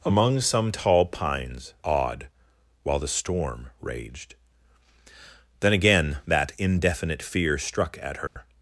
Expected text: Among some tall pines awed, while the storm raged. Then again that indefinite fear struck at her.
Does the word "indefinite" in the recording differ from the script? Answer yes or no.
no